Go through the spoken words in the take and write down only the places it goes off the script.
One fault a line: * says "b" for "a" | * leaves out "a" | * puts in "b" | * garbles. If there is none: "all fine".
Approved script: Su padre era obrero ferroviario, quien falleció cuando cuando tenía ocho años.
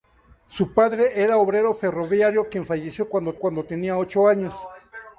all fine